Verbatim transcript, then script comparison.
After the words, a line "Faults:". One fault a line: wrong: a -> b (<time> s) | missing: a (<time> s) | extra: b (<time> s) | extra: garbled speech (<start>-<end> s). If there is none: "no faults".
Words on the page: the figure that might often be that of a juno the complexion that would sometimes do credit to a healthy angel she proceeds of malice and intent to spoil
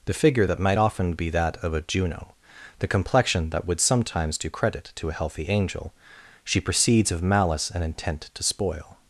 the figure that might often be that of a juno the complexion that would sometimes do credit to a healthy angel she proceeds of malice and intent to spoil
Faults:
no faults